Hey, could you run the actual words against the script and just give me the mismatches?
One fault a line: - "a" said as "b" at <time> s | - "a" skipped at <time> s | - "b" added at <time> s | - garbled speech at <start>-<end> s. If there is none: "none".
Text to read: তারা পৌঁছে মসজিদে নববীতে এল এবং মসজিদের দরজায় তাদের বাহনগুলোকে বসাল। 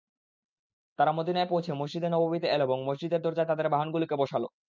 - "মদীনায়" added at 1.1 s